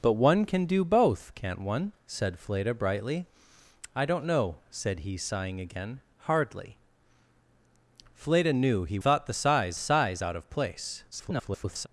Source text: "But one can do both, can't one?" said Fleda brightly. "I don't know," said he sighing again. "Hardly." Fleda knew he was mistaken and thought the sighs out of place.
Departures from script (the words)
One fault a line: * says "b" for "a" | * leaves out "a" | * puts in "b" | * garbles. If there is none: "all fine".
* leaves out "was mistaken and"
* puts in "sighs"
* garbles